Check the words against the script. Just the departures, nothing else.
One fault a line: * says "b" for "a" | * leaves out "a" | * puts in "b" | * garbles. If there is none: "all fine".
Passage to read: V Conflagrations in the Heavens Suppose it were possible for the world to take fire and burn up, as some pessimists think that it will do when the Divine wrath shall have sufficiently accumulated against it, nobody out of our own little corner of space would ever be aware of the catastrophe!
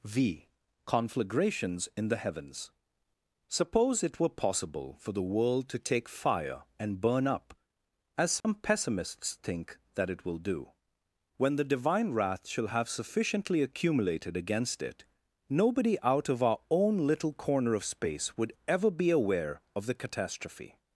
all fine